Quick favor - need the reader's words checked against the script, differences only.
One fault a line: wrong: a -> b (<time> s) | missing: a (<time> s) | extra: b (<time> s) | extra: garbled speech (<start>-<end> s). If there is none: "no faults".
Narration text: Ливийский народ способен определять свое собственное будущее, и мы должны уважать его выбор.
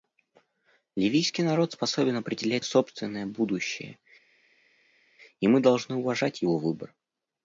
missing: свое (2.6 s)